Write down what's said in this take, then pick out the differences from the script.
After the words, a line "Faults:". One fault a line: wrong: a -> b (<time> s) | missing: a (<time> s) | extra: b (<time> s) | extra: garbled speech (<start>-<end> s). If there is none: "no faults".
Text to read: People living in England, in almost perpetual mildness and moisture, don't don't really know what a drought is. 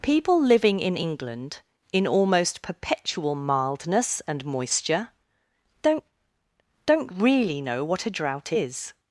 People living in England, in almost perpetual mildness and moisture, don't don't really know what a drought is.
Faults:
no faults